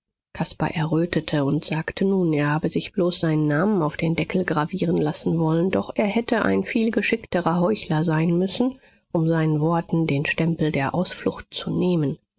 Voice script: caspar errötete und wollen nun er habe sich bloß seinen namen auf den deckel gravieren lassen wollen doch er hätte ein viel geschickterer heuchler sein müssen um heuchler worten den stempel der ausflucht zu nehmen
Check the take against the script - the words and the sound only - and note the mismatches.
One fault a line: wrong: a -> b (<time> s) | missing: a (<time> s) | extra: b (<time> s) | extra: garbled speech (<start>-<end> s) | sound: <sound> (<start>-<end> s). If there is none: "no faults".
wrong: wollen -> sagte (1.6 s)
wrong: heuchler -> seinen (9.3 s)